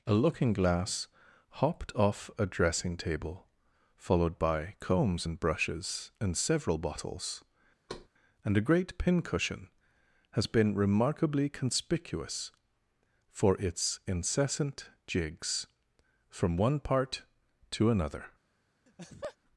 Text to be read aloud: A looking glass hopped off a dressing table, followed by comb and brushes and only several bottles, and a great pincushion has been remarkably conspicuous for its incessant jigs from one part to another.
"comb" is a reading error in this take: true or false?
true